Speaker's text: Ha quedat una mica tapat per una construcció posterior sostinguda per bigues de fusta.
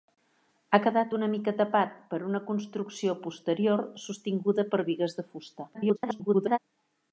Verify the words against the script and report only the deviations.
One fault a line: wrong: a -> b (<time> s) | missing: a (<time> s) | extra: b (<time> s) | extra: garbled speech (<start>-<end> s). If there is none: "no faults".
extra: garbled speech (5.7-6.6 s)